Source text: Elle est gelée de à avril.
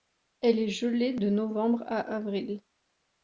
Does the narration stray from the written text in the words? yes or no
yes